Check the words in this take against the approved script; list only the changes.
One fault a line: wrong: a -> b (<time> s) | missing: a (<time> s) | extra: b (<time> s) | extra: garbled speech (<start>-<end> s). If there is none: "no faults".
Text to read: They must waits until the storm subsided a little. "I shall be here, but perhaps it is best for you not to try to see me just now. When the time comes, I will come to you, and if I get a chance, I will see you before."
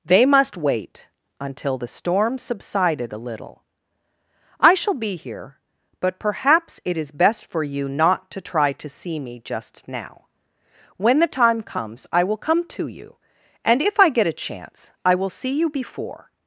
wrong: waits -> wait (0.6 s)